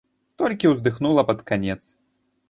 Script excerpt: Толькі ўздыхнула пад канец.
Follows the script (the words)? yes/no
yes